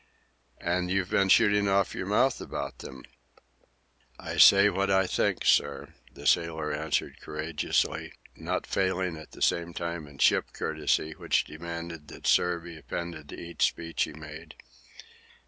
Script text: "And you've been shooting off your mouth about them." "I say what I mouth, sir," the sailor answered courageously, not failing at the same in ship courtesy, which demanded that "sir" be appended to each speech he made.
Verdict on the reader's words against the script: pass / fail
fail